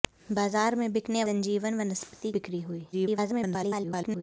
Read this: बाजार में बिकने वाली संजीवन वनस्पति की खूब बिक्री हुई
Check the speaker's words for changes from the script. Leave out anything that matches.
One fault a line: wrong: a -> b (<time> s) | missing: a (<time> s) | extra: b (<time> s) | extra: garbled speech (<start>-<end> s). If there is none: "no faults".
missing: वाली (1.2 s)
missing: की खूब (2.3 s)
extra: garbled speech (2.9-4.2 s)